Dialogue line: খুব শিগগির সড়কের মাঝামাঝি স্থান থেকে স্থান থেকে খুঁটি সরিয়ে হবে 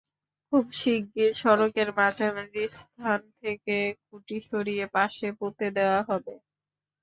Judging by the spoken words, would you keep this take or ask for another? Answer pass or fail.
fail